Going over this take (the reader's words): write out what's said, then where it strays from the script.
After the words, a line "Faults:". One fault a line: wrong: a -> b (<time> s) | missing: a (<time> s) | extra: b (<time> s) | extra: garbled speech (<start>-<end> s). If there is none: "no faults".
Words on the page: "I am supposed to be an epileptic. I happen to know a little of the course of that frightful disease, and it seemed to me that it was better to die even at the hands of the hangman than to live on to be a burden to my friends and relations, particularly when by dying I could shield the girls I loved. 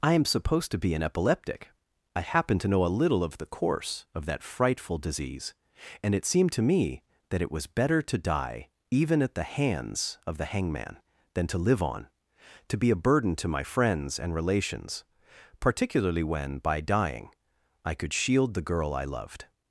"I am supposed to be an epileptic. I happen to know a little of the course of that frightful disease, and it seemed to me that it was better to die even at the hands of the hangman than to live on to be a burden to my friends and relations, particularly when by dying I could shield the girl I loved.
Faults:
wrong: girls -> girl (18.7 s)